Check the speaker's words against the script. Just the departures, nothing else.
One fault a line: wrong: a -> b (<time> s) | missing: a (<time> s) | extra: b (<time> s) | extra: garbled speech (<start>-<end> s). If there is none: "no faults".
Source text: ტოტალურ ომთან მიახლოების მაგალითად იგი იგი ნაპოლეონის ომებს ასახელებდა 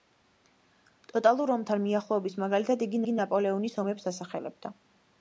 no faults